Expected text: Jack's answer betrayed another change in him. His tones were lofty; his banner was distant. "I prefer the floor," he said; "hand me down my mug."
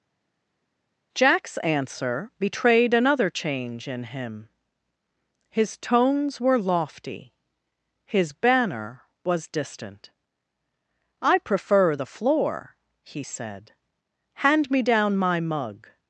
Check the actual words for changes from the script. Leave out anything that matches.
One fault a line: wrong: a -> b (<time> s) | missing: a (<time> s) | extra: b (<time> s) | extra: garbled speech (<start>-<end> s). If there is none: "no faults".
no faults